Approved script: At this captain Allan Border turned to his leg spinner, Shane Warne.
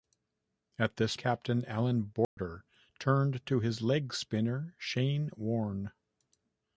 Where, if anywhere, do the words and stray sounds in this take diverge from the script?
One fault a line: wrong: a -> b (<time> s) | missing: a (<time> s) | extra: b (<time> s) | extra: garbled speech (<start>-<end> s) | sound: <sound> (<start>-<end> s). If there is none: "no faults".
sound: dropout (2.2-2.4 s)